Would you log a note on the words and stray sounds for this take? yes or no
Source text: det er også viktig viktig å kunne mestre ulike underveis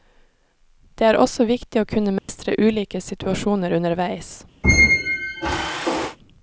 yes